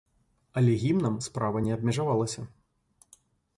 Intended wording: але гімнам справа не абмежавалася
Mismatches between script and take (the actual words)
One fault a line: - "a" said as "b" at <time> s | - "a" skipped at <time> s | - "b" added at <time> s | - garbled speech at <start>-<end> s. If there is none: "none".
none